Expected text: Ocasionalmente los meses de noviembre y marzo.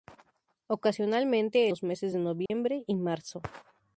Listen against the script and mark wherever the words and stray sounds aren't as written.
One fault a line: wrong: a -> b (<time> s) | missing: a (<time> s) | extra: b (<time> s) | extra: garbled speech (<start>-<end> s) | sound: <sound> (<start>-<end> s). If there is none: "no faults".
sound: dropout (2.5-2.5 s)